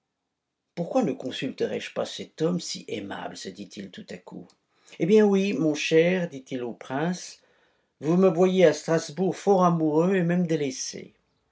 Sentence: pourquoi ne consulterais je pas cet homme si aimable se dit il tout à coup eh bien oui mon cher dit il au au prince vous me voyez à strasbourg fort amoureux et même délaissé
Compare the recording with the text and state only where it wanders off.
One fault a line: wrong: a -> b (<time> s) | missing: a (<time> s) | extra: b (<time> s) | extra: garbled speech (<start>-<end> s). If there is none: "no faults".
missing: au (6.7 s)